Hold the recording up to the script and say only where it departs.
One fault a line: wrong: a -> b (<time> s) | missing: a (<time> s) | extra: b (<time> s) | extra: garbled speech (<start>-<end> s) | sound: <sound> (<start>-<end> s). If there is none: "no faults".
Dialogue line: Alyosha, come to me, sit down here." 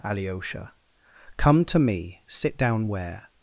wrong: here -> where (2.9 s)